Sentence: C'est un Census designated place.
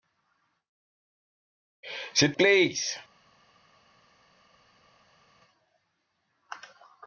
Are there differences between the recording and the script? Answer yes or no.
yes